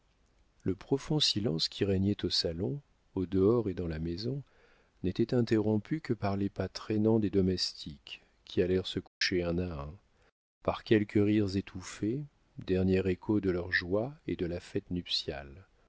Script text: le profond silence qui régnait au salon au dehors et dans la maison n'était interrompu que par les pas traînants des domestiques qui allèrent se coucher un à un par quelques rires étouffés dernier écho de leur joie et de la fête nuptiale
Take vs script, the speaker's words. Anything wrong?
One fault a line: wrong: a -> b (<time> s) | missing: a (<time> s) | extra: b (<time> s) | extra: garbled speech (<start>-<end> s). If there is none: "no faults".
no faults